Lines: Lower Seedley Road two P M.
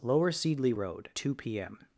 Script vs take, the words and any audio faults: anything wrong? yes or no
no